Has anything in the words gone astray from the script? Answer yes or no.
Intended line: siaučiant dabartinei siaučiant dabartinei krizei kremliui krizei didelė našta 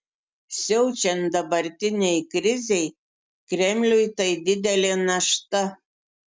yes